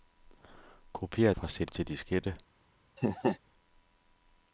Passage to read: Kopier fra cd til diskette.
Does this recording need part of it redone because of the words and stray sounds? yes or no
yes